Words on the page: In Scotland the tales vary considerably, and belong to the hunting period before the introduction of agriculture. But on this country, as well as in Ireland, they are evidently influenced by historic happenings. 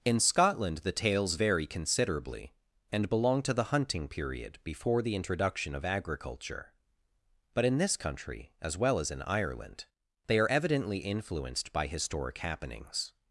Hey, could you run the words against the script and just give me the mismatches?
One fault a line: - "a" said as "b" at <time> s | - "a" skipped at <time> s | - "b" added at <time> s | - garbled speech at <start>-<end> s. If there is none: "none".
- "on" said as "in" at 7.6 s